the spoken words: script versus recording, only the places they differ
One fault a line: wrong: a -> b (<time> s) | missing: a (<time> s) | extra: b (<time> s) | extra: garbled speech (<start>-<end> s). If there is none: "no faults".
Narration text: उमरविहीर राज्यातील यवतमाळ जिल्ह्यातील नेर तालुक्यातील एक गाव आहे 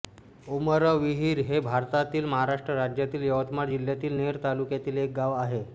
extra: हे भारतातील महाराष्ट्र (1.4 s)